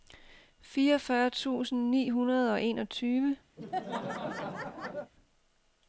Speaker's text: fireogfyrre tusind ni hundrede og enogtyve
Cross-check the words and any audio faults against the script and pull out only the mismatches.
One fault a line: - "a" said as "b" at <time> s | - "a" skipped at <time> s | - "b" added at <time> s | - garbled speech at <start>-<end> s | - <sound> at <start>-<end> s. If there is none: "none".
- laugh at 3.6-5.1 s